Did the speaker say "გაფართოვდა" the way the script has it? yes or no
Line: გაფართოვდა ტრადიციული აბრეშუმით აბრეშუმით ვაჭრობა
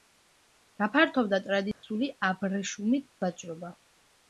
yes